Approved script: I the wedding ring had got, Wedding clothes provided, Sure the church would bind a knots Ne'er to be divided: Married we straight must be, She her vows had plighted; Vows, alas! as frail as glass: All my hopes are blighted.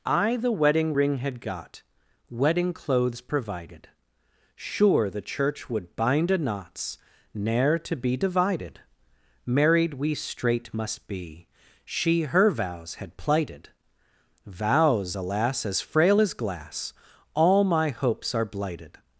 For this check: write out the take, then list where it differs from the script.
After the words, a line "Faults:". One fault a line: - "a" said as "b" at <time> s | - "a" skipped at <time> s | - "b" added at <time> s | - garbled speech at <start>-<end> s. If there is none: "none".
I the wedding ring had got, Wedding clothes provided, Sure the church would bind a knots Ne'er to be divided: Married we straight must be, She her vows had plighted; Vows, alas! as frail as glass: All my hopes are blighted.
Faults:
none